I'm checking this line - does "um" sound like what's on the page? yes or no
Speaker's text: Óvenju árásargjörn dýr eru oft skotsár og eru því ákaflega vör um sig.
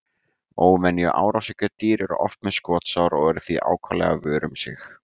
yes